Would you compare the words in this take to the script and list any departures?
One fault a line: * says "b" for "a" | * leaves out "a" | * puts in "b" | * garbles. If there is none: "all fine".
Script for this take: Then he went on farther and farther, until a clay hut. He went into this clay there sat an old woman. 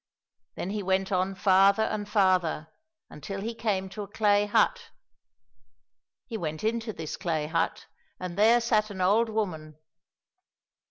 * puts in "he came to"
* puts in "hut and"